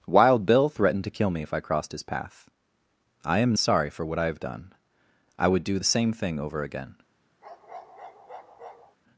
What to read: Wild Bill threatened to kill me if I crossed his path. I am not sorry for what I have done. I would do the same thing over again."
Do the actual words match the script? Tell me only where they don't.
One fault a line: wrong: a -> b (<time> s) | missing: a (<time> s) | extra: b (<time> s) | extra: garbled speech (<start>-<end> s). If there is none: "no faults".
missing: not (3.5 s)